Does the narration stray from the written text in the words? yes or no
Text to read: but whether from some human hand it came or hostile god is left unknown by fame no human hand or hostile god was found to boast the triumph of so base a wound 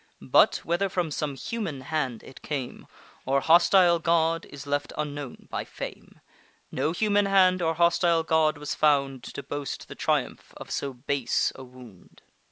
no